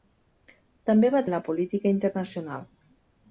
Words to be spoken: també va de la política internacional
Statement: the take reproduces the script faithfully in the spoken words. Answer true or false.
true